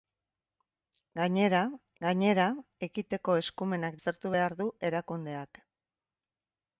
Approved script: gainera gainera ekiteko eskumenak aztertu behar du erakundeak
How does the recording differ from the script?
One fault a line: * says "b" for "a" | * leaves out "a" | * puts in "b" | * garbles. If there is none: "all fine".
all fine